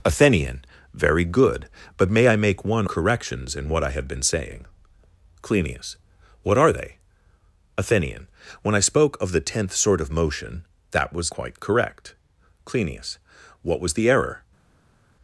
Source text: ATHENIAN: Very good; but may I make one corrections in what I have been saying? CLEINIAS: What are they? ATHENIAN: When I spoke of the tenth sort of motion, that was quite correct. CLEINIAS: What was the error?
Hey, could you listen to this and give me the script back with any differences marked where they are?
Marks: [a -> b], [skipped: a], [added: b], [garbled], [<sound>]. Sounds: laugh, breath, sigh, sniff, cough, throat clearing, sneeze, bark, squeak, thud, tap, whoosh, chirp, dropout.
ATHENIAN: Very good; but may I make one corrections in what I have been saying? CLEINIAS: What are they? ATHENIAN: When I spoke of the tenth sort of motion, that was quite correct. CLEINIAS: What was the error?